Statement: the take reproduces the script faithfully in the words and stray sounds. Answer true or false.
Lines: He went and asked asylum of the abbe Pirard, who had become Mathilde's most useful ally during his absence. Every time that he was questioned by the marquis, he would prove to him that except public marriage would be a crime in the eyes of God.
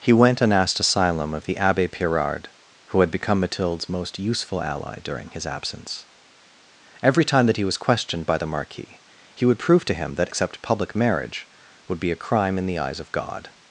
true